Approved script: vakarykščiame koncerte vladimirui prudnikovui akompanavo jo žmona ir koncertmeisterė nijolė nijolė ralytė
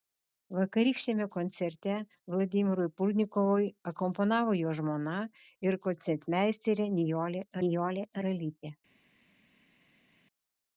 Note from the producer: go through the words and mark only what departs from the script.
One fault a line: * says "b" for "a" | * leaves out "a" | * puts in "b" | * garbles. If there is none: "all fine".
all fine